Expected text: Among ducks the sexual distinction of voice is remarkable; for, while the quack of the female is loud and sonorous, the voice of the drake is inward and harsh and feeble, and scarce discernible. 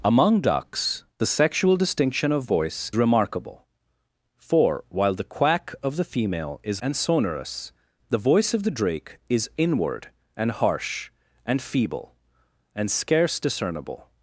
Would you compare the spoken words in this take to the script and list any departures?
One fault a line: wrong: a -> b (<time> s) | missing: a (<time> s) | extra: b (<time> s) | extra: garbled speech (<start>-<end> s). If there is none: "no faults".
missing: is (2.9 s)
missing: loud (6.8 s)